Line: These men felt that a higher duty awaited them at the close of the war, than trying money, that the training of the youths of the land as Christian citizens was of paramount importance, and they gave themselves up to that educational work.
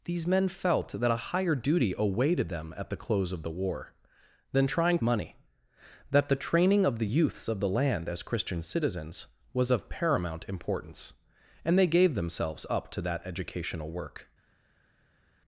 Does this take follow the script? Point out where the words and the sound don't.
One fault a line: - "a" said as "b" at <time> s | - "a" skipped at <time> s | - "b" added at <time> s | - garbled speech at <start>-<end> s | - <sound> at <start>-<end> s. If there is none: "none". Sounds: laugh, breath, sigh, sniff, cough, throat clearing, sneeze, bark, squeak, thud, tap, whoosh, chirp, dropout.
none